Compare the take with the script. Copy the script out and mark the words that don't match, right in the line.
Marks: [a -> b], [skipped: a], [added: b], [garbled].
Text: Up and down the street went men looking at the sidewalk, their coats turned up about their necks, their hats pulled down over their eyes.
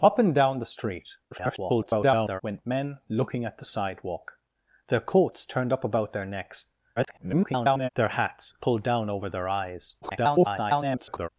Up and down the street [garbled] went men looking at the sidewalk, their coats turned up about their necks, [garbled] their hats pulled down over their eyes. [garbled]